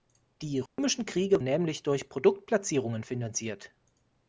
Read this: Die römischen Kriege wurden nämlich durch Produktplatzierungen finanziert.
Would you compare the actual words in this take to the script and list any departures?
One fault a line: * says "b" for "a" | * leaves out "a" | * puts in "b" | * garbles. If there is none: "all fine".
* leaves out "wurden"